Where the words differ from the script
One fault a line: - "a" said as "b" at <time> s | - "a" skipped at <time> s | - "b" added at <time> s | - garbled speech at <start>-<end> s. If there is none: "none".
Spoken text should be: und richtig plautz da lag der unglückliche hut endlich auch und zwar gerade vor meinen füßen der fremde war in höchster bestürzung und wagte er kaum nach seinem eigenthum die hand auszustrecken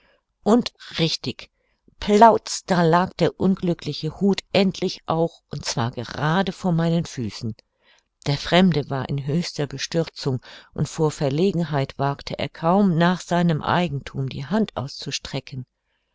- "vor verlegenheit" added at 10.9 s